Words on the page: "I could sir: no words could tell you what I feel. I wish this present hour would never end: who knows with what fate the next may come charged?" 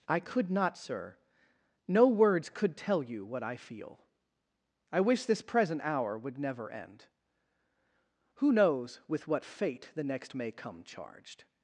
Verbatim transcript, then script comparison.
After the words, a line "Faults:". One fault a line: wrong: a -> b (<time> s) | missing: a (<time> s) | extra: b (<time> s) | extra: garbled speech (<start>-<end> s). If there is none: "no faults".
"I could not, sir: no words could tell you what I feel. I wish this present hour would never end: who knows with what fate the next may come charged?"
Faults:
extra: not (0.5 s)